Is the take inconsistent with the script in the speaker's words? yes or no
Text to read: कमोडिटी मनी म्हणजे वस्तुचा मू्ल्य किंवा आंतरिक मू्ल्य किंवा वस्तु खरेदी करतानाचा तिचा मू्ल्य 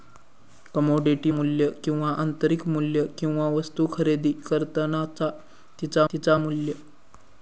yes